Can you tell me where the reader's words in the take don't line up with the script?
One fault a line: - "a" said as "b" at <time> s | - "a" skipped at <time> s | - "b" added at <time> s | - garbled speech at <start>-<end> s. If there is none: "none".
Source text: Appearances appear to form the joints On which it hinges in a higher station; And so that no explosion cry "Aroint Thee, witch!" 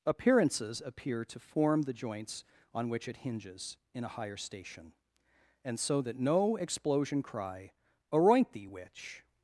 none